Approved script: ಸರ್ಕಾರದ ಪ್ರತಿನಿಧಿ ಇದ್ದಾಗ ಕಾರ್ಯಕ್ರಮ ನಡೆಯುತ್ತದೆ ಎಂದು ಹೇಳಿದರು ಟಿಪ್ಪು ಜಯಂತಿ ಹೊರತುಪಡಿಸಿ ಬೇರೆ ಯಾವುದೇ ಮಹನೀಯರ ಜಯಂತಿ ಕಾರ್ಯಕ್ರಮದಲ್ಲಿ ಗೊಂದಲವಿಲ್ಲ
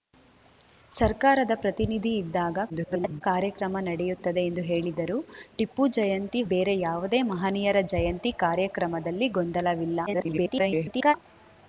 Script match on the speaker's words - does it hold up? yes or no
no